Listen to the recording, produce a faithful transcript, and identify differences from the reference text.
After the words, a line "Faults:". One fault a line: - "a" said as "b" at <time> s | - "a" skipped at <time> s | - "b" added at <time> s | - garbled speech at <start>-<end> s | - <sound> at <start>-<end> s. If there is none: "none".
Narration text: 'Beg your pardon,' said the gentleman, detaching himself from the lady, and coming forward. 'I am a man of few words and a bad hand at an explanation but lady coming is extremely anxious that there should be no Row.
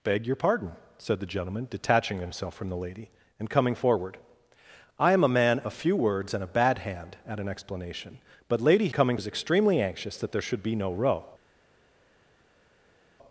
'Beg your pardon,' said the gentleman, detaching himself from the lady, and coming forward. 'I am a man of few words and a bad hand at an explanation but lady coming is extremely anxious that there should be no Row.
Faults:
none